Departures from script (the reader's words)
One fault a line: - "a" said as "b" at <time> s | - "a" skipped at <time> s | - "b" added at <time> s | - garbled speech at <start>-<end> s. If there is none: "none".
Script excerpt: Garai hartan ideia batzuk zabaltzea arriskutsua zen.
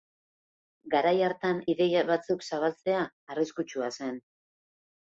none